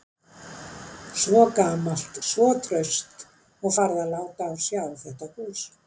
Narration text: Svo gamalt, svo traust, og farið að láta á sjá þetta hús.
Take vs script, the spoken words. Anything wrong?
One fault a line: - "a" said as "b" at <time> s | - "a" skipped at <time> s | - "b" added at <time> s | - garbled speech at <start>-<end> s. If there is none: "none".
none